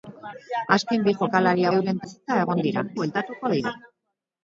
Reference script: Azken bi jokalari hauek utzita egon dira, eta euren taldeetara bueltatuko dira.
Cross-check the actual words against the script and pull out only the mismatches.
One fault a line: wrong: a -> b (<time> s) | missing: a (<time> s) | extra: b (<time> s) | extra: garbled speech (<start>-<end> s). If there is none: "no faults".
wrong: hauek -> euren (1.8 s)
missing: eta euren taldeetara (2.9 s)